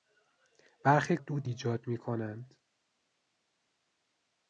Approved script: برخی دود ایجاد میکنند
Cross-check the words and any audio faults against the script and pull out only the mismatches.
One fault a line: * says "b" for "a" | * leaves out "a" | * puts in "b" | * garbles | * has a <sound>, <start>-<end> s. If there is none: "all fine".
all fine